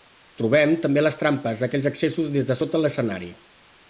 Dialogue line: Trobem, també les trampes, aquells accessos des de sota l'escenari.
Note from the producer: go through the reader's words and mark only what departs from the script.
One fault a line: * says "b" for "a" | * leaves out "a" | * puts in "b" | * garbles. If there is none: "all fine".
all fine